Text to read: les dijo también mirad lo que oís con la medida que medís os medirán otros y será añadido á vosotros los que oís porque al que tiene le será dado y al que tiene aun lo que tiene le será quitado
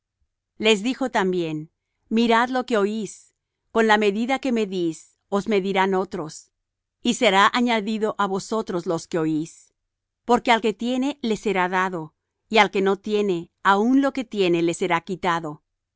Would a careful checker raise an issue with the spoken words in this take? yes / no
yes